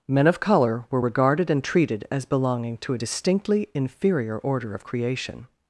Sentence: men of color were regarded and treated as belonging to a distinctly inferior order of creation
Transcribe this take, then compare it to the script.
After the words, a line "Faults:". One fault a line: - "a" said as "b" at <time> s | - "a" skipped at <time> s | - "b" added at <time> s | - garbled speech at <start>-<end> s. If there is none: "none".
men of color were regarded and treated as belonging to a distinctly inferior order of creation
Faults:
none